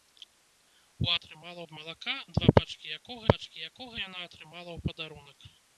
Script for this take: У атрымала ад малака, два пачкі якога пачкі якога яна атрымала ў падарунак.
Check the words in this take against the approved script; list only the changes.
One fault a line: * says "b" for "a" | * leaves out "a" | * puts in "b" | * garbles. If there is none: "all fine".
all fine